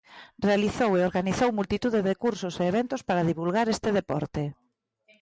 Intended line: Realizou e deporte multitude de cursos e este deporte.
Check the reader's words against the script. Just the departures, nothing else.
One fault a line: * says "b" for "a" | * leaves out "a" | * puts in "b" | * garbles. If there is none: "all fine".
* says "organizou" for "deporte"
* puts in "eventos para divulgar"